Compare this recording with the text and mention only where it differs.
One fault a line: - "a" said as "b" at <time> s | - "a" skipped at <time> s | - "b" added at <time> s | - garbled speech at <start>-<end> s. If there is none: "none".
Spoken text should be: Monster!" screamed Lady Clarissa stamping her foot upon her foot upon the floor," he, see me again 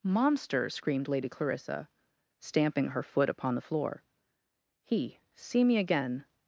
- "her foot upon" skipped at 3.5 s